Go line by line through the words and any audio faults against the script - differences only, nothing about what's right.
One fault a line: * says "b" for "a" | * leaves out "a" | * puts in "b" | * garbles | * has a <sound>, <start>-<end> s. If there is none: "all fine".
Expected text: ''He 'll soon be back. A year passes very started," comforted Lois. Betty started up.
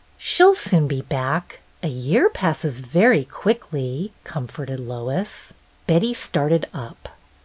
* says "She" for "He"
* says "quickly" for "started"